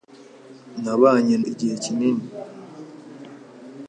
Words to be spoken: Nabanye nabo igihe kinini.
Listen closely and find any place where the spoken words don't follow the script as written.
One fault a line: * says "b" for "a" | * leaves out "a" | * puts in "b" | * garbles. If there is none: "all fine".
* leaves out "nabo"